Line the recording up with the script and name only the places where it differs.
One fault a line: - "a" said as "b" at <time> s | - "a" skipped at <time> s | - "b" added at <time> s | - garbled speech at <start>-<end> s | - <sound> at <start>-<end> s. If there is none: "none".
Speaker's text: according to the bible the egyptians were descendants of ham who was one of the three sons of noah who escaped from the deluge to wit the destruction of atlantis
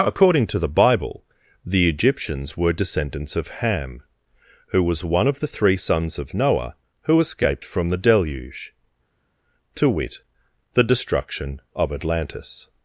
none